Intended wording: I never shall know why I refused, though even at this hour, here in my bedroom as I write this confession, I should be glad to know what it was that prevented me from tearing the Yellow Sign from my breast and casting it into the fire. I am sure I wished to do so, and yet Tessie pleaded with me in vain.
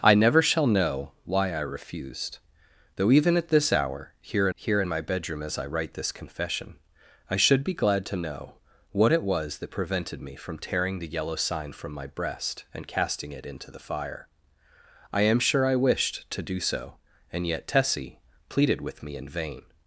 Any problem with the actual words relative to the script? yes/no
yes